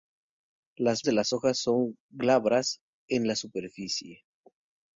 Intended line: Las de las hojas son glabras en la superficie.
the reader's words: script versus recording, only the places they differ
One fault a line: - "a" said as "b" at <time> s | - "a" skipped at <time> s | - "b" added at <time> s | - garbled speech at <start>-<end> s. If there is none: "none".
none